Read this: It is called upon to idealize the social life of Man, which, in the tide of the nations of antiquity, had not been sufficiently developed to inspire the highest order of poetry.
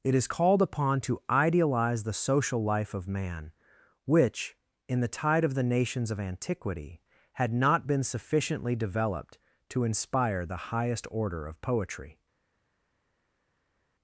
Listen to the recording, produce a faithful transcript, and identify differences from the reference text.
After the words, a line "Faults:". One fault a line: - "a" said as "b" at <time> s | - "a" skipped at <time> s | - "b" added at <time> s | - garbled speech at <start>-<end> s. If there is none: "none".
It is called upon to idealize the social life of Man, which, in the tide of the nations of antiquity, had not been sufficiently developed to inspire the highest order of poetry.
Faults:
none